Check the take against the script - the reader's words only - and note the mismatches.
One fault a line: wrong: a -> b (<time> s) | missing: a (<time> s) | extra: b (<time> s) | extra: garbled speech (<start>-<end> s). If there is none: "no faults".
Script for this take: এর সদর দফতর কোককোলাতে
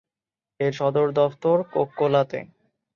no faults